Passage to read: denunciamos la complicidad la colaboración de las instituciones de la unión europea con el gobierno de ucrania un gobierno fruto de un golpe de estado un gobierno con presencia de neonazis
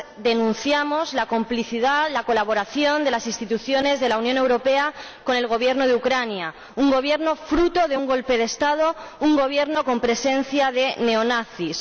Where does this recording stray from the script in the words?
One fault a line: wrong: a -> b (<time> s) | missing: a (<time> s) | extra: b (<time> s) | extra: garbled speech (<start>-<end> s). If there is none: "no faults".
no faults